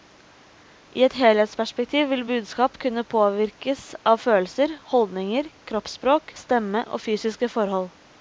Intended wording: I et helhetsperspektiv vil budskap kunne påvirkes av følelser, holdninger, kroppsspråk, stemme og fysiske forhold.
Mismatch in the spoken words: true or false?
false